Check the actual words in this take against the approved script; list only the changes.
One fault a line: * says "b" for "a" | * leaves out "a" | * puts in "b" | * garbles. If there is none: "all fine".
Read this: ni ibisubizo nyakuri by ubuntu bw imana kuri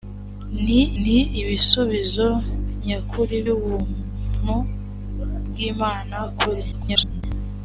* puts in "ni"
* leaves out "by"
* garbles